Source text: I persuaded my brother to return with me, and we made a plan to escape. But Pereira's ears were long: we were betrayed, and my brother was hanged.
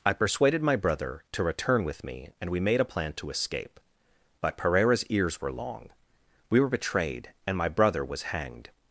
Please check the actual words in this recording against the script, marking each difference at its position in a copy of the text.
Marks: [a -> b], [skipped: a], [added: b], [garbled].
I persuaded my brother to return with me, and we made a plan to escape. But Pereira's ears were long: we were betrayed, and my brother was hanged.